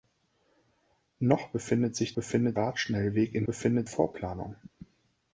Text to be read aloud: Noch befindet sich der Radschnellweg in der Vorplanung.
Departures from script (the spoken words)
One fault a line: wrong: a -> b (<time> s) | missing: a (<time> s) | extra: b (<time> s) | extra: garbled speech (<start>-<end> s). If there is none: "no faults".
wrong: der -> befindet (2.1 s)
wrong: der -> befindet (3.4 s)